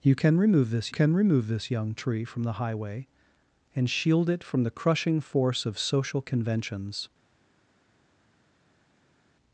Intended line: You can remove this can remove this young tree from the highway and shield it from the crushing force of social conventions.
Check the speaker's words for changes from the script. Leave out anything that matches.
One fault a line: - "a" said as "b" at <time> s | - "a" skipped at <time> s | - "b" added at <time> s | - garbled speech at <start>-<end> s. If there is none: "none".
none